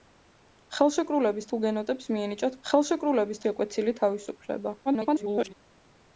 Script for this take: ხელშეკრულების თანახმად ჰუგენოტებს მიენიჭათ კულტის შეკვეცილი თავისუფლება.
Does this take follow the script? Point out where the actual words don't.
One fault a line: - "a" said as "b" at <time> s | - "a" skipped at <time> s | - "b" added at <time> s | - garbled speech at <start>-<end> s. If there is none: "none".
- "თანახმად" skipped at 1.5 s
- "კულტის" said as "ხელშეკრულების" at 2.7 s
- garbled speech at 4.9-5.5 s